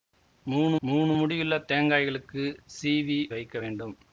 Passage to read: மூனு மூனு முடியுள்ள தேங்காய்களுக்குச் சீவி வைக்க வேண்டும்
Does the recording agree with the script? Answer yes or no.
yes